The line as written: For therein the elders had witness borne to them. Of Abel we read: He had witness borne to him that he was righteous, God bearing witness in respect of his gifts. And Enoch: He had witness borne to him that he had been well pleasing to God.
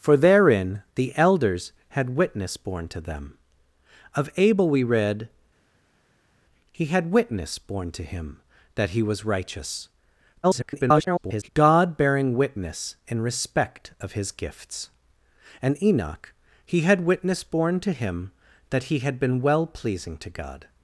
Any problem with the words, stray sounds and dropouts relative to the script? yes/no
yes